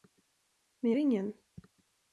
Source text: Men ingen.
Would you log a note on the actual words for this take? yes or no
no